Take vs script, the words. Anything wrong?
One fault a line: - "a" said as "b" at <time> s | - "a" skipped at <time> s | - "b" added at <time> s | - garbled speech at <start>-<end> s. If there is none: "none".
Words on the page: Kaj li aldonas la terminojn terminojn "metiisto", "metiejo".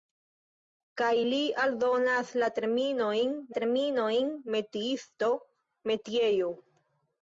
none